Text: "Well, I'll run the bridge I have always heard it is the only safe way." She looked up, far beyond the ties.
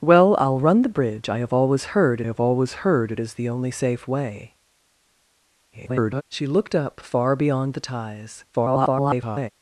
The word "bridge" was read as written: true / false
true